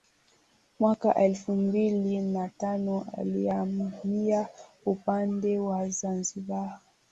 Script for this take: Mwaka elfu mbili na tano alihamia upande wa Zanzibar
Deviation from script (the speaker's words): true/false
false